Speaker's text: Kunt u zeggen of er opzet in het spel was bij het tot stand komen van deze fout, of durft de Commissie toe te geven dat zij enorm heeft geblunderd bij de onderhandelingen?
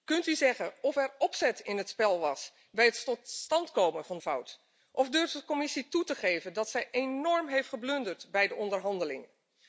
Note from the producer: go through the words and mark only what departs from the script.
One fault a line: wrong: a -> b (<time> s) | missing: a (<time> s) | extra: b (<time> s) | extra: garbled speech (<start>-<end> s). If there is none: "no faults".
missing: deze (4.2 s)